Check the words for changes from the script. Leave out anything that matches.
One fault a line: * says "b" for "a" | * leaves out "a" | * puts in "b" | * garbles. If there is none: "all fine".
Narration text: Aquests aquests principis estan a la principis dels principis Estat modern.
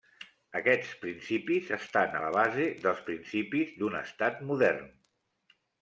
* leaves out "aquests"
* says "base" for "principis"
* puts in "d'un"